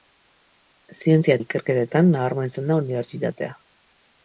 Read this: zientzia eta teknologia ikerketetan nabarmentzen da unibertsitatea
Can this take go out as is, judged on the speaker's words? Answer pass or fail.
fail